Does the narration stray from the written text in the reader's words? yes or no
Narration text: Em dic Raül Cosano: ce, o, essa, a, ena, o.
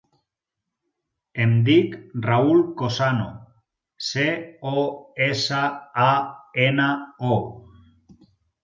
no